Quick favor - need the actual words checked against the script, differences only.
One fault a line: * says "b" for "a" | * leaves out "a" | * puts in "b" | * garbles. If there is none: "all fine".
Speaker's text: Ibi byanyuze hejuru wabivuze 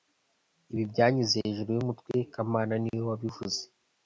* puts in "yumutwe kamana niwe"